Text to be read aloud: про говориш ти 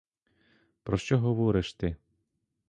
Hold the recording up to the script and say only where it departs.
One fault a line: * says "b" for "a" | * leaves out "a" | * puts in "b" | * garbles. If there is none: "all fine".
* puts in "що"